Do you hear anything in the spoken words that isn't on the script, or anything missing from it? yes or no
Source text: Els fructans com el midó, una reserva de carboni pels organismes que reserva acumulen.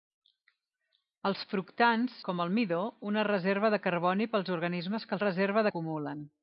no